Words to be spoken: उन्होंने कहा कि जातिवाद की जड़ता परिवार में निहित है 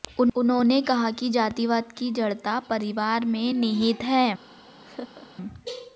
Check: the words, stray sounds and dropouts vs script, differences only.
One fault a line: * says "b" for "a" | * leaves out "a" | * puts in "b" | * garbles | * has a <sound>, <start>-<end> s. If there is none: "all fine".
* has a laugh, 4.8-5.3 s